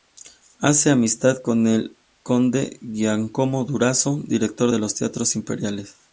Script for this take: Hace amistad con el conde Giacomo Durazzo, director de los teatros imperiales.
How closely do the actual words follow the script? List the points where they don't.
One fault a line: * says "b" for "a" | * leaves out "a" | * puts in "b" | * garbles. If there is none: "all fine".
all fine